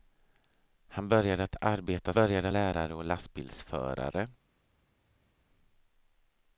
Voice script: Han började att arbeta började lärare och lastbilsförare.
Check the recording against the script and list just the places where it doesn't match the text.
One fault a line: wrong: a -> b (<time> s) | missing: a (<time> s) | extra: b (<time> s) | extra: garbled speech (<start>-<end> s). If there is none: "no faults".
no faults